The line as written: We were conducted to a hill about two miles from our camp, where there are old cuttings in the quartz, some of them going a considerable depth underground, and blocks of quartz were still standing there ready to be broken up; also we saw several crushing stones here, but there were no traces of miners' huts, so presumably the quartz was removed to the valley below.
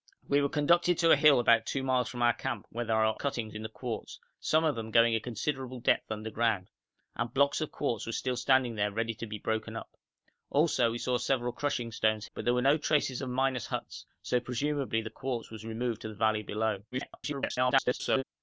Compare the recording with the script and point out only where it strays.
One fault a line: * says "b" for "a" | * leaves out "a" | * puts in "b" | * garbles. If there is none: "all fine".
* leaves out "old"
* leaves out "here"
* garbles